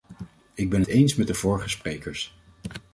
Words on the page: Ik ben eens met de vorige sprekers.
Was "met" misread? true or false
false